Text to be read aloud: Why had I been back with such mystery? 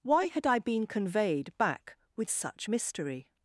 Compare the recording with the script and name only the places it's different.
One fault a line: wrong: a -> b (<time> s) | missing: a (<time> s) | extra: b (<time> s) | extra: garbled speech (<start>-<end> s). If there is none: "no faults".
extra: conveyed (0.9 s)